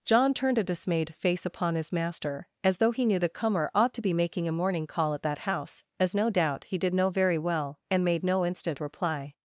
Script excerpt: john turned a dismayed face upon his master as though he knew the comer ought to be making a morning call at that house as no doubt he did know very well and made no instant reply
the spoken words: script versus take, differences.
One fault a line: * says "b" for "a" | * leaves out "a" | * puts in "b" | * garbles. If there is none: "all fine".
all fine